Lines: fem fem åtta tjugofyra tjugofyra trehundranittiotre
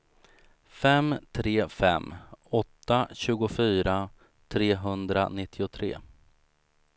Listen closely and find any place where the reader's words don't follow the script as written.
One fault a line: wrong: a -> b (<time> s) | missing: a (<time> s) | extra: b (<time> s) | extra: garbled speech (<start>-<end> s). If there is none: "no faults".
extra: tre (1.3 s)
missing: tjugofyra (4.1 s)